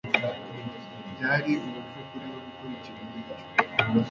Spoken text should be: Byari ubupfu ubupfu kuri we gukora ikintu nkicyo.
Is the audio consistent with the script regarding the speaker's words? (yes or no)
no